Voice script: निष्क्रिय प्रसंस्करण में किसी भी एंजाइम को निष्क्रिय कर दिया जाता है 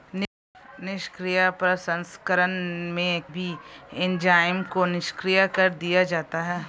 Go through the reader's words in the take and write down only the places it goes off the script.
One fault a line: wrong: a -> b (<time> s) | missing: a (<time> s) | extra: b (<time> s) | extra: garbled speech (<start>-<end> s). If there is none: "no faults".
missing: किसी (3.2 s)